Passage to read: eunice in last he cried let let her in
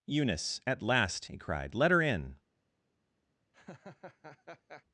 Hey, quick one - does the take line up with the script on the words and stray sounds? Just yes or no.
no